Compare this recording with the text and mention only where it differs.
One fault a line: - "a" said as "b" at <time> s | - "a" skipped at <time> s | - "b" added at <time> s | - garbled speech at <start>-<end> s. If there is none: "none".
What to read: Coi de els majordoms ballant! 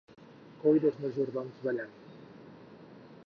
none